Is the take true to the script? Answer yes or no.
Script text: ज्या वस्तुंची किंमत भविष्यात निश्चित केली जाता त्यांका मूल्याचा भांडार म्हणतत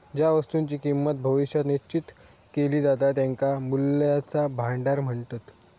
yes